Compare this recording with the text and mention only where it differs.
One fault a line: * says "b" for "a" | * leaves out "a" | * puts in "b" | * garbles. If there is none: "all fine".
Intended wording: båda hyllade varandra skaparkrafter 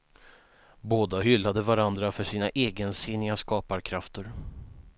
* puts in "för sina egensinniga"